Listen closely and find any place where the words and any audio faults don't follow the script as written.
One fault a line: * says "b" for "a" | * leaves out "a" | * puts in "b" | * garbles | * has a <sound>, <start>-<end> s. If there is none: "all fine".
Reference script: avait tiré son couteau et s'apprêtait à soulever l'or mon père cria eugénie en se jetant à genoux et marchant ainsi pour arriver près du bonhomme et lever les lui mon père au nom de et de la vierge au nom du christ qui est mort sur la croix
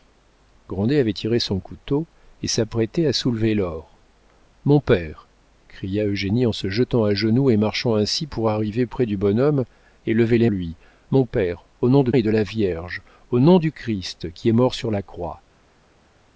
all fine